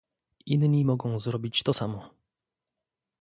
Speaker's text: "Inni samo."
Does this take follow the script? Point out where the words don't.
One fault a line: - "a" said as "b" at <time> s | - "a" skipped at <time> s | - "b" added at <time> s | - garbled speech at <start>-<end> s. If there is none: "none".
- "mogą zrobić to" added at 0.8 s